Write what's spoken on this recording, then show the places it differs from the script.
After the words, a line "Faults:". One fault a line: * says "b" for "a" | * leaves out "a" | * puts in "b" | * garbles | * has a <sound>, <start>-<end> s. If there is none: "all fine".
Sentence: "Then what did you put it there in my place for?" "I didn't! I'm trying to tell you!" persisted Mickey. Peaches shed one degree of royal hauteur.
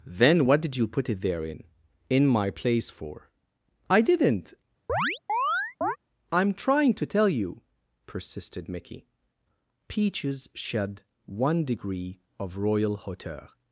"Then what did you put it there in in my place for?" "I didn't! I'm trying to tell you!" persisted Mickey. Peaches shed one degree of royal hauteur.
Faults:
* puts in "in"
* has a chirp, 4.9-6.0 s